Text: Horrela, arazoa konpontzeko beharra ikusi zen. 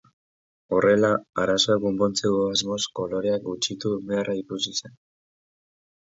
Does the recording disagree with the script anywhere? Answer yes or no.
yes